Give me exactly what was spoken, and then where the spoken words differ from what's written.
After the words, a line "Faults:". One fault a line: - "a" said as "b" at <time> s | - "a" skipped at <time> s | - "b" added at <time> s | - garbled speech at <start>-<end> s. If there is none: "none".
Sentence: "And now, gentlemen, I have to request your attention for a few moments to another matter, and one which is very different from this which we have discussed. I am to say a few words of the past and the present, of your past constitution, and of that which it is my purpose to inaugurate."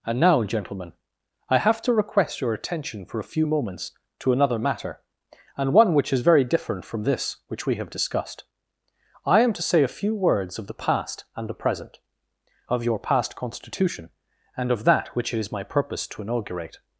"And now, gentlemen, I have to request your attention for a few moments to another matter, and one which is very different from this which we have discussed. I am to say a few words of the past and the present, of your past constitution, and of that which it is my purpose to inaugurate."
Faults:
none